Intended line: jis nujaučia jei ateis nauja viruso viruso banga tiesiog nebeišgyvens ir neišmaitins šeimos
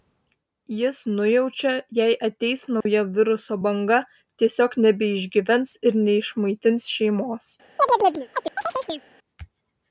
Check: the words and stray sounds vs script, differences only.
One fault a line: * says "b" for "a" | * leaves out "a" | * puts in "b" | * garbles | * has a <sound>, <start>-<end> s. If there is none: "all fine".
* has a dropout, 2.8-2.9 s
* leaves out "viruso"
* has a chirp, 7.8-9.0 s